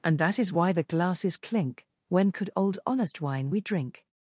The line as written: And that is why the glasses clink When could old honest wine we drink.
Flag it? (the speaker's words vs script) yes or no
no